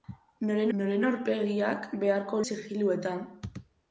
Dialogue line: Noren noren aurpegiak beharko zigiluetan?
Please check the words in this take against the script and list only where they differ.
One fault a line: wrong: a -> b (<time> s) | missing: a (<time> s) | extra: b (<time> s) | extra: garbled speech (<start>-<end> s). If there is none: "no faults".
no faults